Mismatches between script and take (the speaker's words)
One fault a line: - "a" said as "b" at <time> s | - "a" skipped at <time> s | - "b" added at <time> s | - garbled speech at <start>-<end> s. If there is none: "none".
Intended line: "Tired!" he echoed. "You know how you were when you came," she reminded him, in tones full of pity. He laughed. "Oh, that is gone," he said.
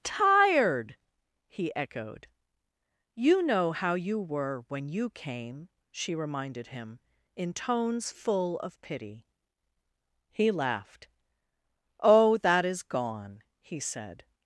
none